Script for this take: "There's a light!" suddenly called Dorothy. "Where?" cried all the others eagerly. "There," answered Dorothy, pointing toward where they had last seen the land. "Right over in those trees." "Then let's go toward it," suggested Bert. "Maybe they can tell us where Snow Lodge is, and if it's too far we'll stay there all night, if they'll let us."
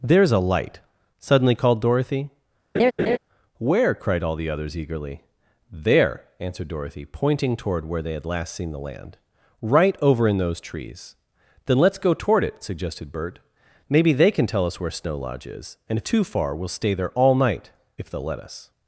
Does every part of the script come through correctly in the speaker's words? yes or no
no